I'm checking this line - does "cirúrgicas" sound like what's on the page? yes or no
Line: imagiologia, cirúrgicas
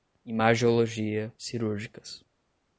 yes